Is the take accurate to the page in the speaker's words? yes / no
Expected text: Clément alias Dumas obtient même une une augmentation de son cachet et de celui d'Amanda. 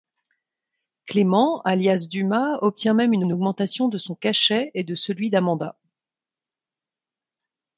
yes